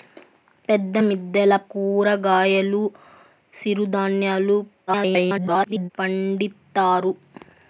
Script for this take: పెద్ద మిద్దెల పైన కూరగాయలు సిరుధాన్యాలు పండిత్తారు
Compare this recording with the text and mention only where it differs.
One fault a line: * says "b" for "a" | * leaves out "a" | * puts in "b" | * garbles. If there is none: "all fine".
* leaves out "పైన"
* garbles